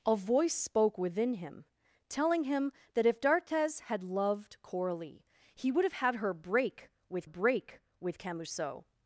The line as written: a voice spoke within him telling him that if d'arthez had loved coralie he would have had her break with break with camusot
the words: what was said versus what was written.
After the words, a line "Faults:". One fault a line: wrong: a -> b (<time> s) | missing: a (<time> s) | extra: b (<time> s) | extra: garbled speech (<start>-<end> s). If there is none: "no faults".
a voice spoke within him telling him that if d'arthez had loved coralie he would have had her break with break with camusot
Faults:
no faults